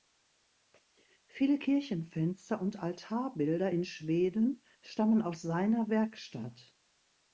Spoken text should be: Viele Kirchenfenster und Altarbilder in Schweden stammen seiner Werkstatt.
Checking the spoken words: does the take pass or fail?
fail